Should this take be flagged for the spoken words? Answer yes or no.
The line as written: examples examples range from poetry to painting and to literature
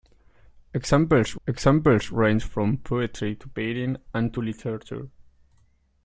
no